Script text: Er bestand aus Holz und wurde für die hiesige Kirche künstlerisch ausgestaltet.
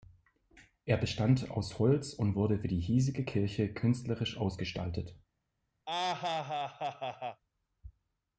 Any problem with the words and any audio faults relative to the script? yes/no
yes